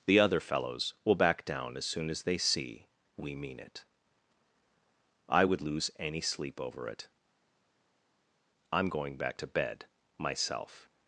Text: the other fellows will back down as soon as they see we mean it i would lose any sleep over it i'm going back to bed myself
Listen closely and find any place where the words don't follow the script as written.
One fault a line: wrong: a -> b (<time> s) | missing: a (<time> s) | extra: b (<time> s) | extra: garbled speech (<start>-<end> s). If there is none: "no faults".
no faults